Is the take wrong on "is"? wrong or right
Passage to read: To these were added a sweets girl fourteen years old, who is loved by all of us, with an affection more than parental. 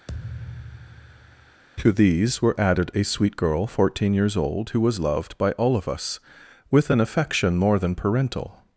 wrong